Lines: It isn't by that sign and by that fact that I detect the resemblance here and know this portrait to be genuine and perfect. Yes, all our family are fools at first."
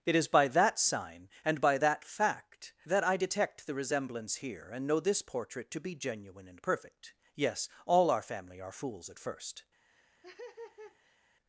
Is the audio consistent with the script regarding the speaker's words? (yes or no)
no